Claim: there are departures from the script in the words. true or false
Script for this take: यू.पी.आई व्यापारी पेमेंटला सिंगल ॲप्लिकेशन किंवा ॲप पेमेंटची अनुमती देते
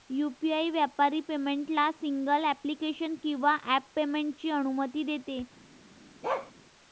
false